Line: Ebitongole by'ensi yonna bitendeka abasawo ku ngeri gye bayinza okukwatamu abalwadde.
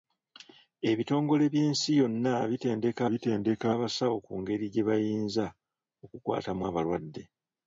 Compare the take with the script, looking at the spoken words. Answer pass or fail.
fail